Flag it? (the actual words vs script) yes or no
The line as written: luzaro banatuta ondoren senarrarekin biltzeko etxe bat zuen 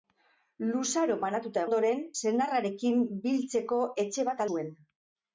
no